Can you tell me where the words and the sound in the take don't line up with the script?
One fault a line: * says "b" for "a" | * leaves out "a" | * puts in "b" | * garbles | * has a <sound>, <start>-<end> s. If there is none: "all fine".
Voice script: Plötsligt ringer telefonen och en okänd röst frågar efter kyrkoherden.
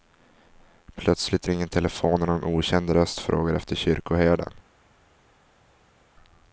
all fine